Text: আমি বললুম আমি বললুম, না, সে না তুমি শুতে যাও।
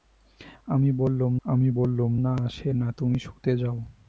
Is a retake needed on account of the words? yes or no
no